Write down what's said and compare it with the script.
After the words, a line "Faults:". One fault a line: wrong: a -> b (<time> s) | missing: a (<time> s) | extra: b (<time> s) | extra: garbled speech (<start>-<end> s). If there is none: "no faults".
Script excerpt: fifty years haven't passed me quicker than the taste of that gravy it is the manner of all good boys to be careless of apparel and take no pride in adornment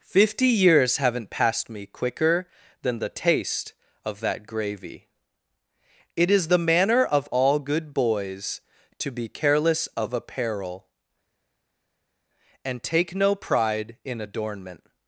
fifty years haven't passed me quicker than the taste of that gravy it is the manner of all good boys to be careless of apparel and take no pride in adornment
Faults:
no faults